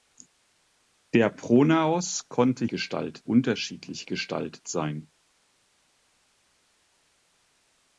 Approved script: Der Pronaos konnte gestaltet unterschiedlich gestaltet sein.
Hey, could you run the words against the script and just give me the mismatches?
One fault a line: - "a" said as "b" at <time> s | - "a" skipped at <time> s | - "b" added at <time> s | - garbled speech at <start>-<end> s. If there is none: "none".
none